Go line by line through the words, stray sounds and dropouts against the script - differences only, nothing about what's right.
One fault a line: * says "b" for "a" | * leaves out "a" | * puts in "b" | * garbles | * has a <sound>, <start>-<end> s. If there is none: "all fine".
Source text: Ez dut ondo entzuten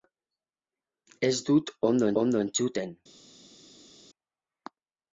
* puts in "ondo"